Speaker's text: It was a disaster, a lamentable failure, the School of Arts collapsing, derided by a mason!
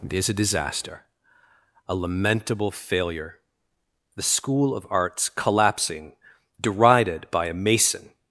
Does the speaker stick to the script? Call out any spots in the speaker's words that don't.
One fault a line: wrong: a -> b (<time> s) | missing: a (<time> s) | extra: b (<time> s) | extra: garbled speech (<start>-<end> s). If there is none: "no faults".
wrong: was -> is (0.1 s)